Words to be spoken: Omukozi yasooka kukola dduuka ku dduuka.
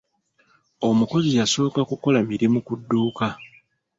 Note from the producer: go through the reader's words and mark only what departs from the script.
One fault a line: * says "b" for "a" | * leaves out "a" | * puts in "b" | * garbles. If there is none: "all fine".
* says "mirimu" for "dduuka"